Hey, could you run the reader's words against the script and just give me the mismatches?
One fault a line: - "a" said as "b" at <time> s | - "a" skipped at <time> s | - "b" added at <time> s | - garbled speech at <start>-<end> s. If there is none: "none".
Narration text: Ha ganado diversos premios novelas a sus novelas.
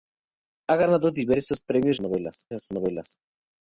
none